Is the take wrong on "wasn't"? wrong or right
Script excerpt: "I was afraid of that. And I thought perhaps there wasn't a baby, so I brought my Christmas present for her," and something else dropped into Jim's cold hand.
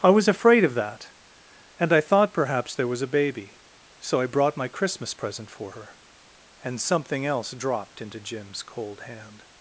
wrong